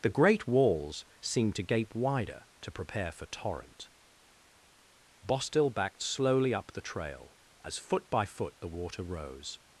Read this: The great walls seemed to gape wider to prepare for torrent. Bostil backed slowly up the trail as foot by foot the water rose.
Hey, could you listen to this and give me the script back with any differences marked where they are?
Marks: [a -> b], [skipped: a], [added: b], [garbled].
The great walls seemed to gape wider to prepare for torrent. Bostil backed slowly up the trail as foot by foot the water rose.